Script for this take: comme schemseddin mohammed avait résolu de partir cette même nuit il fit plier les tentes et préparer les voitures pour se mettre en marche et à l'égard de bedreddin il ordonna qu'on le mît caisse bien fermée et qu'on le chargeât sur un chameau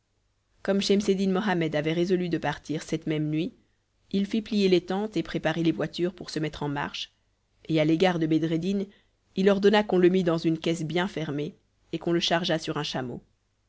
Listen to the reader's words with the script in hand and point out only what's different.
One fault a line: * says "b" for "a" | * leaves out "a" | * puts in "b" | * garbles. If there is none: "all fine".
* puts in "dans une"